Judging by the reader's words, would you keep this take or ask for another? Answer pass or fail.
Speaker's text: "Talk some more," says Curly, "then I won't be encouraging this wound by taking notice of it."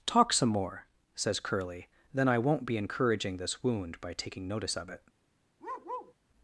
pass